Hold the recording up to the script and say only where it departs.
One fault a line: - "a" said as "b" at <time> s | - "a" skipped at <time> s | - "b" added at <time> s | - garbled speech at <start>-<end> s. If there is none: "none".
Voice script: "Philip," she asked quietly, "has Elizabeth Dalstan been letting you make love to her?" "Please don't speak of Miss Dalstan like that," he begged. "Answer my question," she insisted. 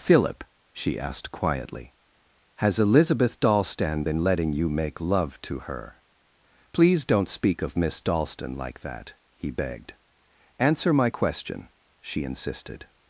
none